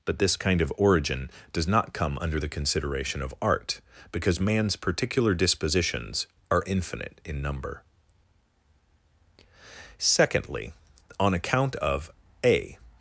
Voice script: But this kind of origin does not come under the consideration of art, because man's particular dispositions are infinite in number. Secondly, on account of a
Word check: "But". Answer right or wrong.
right